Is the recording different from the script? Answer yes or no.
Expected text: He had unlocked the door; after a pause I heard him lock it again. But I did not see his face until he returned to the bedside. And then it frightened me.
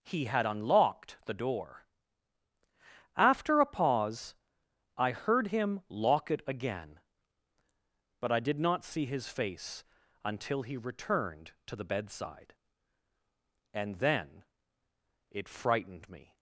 no